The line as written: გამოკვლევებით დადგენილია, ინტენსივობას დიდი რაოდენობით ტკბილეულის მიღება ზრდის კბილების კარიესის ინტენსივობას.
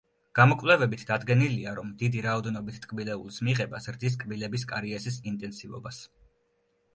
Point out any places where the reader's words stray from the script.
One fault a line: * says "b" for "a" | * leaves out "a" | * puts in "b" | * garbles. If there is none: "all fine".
* says "რომ" for "ინტენსივობას"